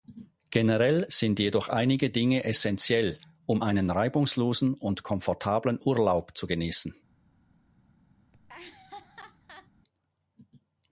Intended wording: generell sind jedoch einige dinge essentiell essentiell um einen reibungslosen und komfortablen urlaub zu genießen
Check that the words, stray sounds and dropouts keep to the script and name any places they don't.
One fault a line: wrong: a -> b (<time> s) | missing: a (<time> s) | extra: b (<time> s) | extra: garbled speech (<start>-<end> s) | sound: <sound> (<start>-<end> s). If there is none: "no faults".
missing: essentiell (3.2 s)
sound: laugh (8.3-9.7 s)